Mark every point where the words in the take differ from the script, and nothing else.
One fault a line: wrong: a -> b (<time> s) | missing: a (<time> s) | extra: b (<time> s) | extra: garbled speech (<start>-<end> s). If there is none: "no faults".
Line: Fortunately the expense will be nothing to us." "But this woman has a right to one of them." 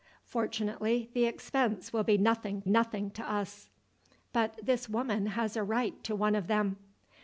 extra: nothing (2.7 s)